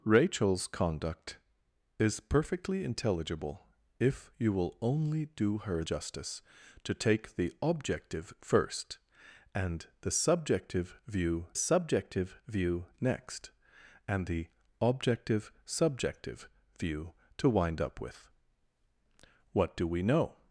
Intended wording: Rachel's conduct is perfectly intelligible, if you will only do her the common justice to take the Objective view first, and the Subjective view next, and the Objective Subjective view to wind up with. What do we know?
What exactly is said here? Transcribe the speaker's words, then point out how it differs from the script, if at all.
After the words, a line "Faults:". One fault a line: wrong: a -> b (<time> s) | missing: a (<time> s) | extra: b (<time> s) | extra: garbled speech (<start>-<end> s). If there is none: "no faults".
Rachel's conduct is perfectly intelligible, if you will only do her justice to take the Objective first, and the Subjective view Subjective view next, and the Objective Subjective view to wind up with. What do we know?
Faults:
missing: the common (5.8 s)
missing: view (8.3 s)
extra: Subjective view (11.5 s)